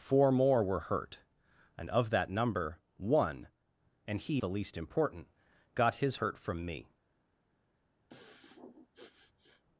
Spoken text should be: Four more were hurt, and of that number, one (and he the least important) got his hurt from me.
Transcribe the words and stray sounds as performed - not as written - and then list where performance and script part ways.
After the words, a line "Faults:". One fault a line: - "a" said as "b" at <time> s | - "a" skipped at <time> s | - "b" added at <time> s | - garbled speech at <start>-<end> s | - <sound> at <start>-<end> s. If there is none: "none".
Four more were hurt, and of that number, one (and he the least important) got his hurt from me.
Faults:
- sniff at 8.1-9.6 s